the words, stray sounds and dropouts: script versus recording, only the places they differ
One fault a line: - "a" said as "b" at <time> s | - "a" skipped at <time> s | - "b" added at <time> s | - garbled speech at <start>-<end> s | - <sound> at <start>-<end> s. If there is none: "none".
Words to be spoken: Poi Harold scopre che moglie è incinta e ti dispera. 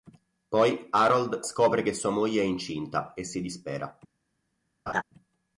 - "sua" added at 1.9 s
- "ti" said as "si" at 3.3 s
- laugh at 4.9-5.0 s